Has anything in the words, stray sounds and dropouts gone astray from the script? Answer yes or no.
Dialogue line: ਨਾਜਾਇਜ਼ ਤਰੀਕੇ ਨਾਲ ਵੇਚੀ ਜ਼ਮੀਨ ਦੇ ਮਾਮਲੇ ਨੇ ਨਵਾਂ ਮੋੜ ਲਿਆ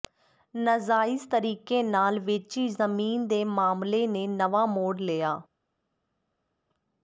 no